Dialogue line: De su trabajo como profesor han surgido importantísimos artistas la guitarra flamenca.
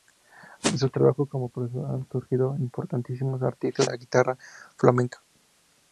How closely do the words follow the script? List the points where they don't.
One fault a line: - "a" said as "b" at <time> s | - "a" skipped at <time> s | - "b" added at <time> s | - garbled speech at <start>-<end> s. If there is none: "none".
none